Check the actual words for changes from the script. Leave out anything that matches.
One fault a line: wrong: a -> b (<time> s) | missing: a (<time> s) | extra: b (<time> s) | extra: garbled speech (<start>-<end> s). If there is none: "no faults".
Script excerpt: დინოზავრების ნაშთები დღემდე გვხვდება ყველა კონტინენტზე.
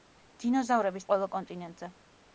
missing: ნაშთები დღემდე გვხვდება (1.1 s)